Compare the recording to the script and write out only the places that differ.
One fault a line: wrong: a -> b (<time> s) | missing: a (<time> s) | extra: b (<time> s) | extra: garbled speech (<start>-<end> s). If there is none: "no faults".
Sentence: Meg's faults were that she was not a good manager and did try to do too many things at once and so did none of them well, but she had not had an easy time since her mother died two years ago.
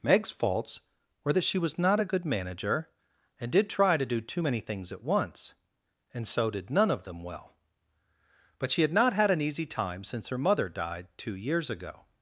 no faults